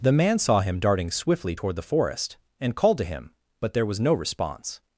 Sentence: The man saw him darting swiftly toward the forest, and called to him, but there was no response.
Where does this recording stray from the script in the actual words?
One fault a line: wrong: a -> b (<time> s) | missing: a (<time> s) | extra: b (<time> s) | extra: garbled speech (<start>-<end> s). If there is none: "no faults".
no faults